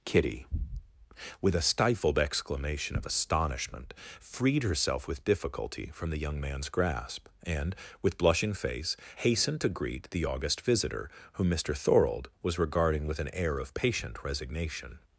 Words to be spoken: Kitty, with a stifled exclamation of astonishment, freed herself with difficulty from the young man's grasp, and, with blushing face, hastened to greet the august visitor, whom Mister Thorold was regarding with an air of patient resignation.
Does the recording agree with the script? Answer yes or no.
yes